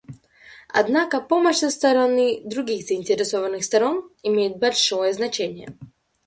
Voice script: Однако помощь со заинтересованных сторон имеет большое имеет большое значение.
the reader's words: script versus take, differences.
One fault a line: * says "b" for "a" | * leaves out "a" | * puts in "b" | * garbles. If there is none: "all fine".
* puts in "стороны других"
* leaves out "имеет большое"